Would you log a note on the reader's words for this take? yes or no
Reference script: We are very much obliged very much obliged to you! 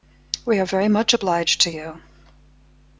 yes